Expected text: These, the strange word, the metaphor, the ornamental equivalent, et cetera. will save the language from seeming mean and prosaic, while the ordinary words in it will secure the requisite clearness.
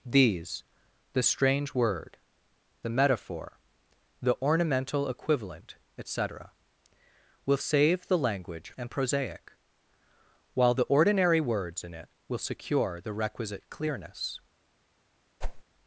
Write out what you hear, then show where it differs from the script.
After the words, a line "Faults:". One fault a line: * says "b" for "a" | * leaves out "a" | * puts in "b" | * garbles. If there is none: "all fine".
These, the strange word, the metaphor, the ornamental equivalent, et cetera. will save the language and prosaic, while the ordinary words in it will secure the requisite clearness.
Faults:
* leaves out "from seeming mean"